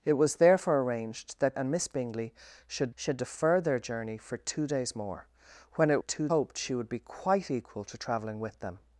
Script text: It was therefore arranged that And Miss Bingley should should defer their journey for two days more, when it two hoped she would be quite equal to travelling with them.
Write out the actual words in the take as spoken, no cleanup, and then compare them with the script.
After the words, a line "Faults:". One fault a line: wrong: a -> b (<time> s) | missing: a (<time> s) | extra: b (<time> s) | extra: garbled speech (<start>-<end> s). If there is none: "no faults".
It was therefore arranged that And Miss Bingley should should defer their journey for two days more, when it two hoped she would be quite equal to travelling with them.
Faults:
no faults